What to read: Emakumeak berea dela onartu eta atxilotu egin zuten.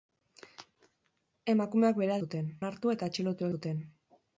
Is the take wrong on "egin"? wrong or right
wrong